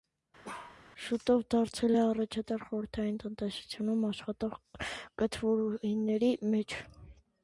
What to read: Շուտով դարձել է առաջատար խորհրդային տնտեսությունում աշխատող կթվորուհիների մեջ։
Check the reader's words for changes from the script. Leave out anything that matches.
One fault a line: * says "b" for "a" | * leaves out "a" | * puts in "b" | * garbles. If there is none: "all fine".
all fine